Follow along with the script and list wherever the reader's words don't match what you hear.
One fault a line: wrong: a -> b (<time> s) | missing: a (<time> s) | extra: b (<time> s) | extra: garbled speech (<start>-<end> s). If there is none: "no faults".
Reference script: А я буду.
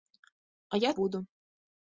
no faults